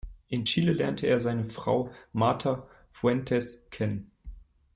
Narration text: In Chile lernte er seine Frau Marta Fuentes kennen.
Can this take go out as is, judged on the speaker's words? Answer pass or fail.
pass